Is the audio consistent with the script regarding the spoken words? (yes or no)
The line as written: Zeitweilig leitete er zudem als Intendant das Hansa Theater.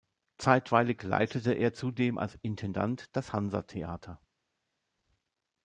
yes